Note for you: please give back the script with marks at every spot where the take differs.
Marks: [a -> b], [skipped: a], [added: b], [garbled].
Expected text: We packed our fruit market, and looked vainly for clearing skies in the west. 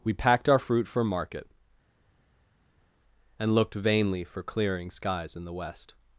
We packed our fruit [added: for] market, and looked vainly for clearing skies in the west.